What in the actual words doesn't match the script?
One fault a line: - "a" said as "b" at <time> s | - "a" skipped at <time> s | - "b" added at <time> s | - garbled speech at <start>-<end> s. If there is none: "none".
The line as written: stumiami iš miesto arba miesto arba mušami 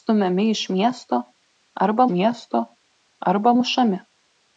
none